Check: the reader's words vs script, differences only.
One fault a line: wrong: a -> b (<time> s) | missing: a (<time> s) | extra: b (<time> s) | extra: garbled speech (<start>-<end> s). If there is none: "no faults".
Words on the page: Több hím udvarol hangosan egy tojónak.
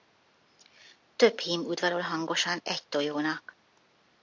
no faults